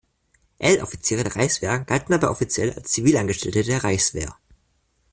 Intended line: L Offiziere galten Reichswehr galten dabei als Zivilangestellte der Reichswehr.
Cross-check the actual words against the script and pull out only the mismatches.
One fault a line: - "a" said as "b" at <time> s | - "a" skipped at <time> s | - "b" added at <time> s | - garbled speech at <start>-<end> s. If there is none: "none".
- "galten" said as "der" at 1.2 s
- "offiziell" added at 2.3 s